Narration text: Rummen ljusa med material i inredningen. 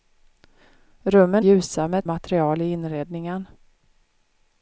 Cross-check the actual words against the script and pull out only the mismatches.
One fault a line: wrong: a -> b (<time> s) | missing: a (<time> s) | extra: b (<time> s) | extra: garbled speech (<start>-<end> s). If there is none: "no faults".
no faults